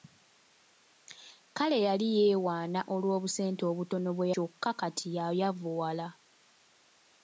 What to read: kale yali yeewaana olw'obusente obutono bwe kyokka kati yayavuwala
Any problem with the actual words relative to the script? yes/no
no